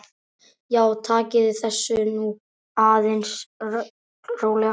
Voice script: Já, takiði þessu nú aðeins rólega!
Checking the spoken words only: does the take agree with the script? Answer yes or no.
yes